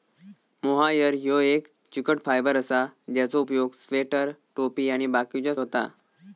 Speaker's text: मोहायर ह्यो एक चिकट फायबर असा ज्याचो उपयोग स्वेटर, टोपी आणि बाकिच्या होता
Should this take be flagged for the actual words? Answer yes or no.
no